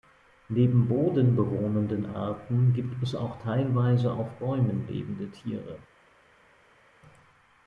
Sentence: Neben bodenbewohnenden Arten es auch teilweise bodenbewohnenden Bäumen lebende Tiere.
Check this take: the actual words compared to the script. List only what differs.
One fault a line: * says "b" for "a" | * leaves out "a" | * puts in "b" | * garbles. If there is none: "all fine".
* puts in "gibt"
* says "auf" for "bodenbewohnenden"